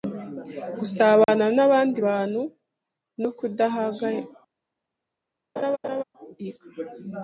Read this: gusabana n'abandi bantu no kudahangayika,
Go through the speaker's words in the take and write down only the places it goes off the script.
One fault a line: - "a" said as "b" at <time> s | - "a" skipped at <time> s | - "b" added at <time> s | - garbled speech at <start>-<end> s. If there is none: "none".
none